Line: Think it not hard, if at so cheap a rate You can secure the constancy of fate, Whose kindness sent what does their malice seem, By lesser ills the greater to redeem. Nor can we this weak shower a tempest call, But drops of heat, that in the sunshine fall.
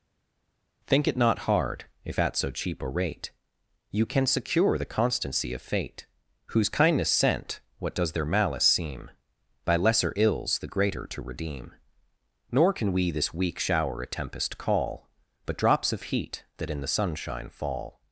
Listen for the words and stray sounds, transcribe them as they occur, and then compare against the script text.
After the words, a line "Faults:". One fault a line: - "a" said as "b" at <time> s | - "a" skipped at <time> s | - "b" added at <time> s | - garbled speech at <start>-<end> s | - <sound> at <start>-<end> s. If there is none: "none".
Think it not hard, if at so cheap a rate You can secure the constancy of fate, Whose kindness sent what does their malice seem, By lesser ills the greater to redeem. Nor can we this weak shower a tempest call, But drops of heat, that in the sunshine fall.
Faults:
none